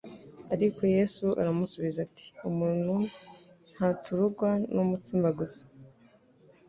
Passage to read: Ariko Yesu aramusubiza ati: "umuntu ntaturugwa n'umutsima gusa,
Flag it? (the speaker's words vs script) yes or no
no